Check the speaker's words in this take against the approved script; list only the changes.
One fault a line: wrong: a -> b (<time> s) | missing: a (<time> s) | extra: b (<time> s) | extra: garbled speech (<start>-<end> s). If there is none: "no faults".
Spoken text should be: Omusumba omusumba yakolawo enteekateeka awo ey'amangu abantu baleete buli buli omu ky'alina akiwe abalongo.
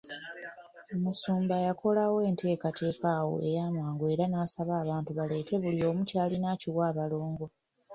missing: omusumba (1.6 s)
extra: era n'asaba (4.1 s)
missing: buli (5.8 s)